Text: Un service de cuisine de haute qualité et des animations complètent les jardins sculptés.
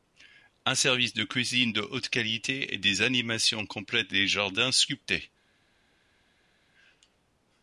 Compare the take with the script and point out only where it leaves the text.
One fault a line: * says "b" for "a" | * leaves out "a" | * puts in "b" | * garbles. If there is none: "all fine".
all fine